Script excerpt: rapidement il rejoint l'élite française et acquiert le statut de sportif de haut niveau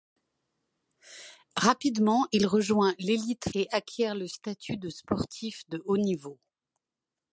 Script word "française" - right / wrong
wrong